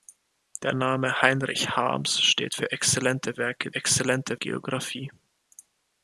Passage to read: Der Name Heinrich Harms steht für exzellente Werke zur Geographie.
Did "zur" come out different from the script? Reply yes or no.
yes